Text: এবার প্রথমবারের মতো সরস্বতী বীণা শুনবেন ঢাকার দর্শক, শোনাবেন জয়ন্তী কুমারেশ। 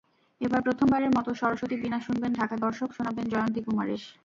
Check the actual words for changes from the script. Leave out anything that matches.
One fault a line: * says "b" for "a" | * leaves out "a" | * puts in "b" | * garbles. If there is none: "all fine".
all fine